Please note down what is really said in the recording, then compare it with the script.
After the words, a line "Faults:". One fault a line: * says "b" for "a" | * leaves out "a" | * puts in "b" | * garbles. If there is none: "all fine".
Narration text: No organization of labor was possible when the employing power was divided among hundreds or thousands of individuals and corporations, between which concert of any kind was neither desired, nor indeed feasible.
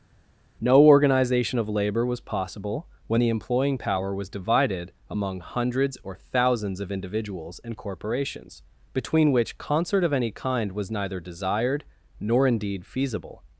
No organization of labor was possible when the employing power was divided among hundreds or thousands of individuals and corporations, between which concert of any kind was neither desired, nor indeed feasible.
Faults:
all fine